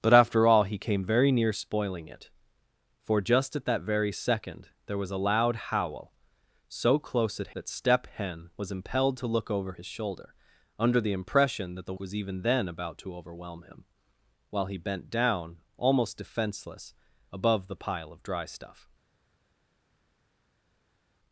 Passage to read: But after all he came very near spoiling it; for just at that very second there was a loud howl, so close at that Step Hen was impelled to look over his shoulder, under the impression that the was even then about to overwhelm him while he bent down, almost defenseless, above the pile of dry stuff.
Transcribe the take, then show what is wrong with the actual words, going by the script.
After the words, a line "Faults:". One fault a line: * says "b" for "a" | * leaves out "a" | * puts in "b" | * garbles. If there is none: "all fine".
But after all he came very near spoiling it; for just at that very second there was a loud howl, so close at that Step Hen was impelled to look over his shoulder, under the impression that the was even then about to overwhelm him while he bent down, almost defenseless, above the pile of dry stuff.
Faults:
all fine